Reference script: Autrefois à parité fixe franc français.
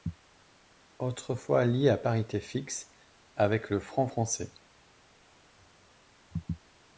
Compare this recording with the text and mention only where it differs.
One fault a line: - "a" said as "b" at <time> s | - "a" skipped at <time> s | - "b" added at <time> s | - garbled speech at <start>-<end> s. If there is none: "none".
- "lié" added at 1.6 s
- "avec le" added at 3.4 s